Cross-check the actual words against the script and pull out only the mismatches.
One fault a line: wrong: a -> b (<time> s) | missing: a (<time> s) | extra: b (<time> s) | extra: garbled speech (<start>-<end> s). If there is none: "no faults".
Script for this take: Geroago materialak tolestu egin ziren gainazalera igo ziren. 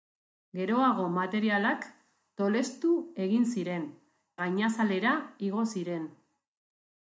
no faults